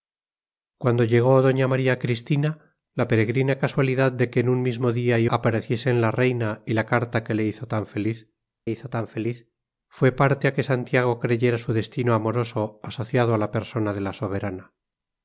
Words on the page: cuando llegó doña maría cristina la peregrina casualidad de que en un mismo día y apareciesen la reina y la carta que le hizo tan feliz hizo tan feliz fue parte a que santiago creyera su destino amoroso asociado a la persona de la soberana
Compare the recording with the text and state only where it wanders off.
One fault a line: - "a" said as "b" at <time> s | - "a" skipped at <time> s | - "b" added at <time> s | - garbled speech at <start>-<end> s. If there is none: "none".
none